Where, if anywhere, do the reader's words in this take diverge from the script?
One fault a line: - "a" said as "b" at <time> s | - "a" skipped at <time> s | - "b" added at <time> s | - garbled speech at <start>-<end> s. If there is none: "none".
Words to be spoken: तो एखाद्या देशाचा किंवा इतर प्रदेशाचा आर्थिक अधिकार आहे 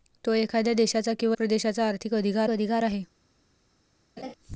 - "इतर" skipped at 1.4 s
- "अधिकार" added at 2.5 s